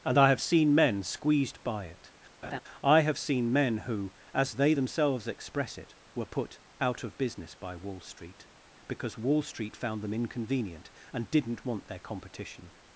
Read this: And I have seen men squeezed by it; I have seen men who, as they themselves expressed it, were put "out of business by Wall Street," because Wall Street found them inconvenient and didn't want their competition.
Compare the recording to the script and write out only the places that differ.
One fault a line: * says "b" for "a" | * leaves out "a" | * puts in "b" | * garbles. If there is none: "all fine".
* says "express" for "expressed"